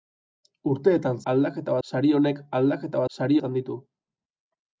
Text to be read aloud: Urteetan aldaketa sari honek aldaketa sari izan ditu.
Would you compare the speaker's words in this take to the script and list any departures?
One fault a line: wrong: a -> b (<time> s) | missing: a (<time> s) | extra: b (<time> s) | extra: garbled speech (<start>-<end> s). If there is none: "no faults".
no faults